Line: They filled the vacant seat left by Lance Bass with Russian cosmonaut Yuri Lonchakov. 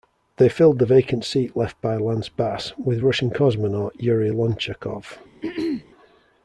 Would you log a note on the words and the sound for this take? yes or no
yes